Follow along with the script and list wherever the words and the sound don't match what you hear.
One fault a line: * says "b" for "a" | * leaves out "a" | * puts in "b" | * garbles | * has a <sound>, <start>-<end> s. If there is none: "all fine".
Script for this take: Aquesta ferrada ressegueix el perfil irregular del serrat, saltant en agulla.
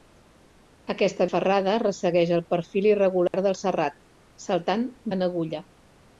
* has a dropout, 3.3-3.3 s